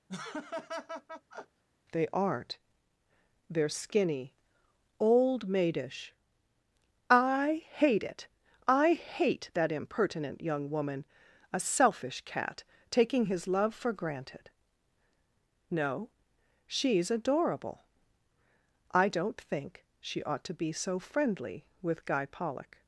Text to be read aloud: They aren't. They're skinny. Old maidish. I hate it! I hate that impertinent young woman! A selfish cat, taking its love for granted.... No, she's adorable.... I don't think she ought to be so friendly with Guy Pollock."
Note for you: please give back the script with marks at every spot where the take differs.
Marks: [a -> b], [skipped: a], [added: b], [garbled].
They aren't. They're skinny. Old maidish. I hate it! I hate that impertinent young woman! A selfish cat, taking [its -> his] love for granted.... No, she's adorable.... I don't think she ought to be so friendly with Guy Pollock."